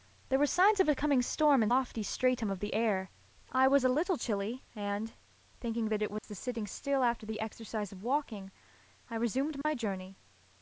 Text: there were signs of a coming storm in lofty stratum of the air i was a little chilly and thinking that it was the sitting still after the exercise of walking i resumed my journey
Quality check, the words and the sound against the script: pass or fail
fail